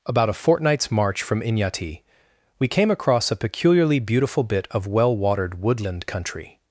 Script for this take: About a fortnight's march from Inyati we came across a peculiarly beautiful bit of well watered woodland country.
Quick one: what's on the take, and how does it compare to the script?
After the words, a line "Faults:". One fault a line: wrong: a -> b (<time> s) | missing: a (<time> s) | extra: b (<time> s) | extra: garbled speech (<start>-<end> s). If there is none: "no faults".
About a fortnight's march from Inyati we came across a peculiarly beautiful bit of well watered woodland country.
Faults:
no faults